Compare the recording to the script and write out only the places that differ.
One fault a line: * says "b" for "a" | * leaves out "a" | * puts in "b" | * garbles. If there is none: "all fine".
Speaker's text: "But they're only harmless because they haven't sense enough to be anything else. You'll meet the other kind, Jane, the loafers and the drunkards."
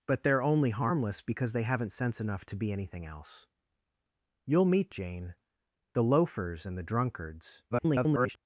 * leaves out "the other kind"
* garbles